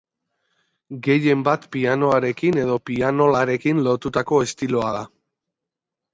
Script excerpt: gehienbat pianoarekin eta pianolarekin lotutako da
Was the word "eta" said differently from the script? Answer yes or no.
yes